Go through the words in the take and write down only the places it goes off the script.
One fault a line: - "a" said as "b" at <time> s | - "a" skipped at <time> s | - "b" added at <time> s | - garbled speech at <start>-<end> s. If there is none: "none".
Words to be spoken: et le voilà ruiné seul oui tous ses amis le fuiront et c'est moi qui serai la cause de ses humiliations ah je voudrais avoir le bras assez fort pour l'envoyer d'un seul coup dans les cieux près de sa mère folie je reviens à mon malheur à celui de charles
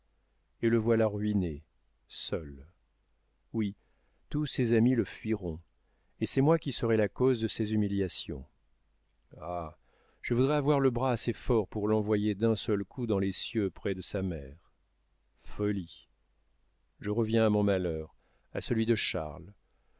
none